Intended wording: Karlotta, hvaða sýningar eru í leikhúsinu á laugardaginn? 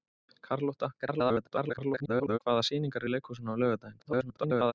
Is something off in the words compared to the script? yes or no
yes